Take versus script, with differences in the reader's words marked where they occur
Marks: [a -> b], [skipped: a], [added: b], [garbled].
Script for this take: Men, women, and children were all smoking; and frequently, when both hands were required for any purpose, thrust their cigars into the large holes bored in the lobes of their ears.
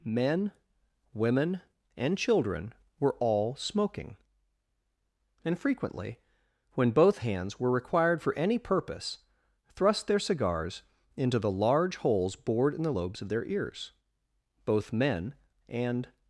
Men, women, and children were all smoking; and frequently, when both hands were required for any purpose, thrust their cigars into the large holes bored in the lobes of their ears. [added: Both men and]